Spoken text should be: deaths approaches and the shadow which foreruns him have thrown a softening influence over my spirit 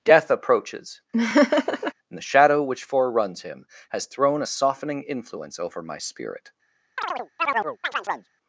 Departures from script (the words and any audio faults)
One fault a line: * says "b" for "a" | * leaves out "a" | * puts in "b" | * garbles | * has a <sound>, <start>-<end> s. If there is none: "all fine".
* says "death" for "deaths"
* has a laugh, 1.1-1.9 s
* says "has" for "have"
* has a chirp, 7.0-8.3 s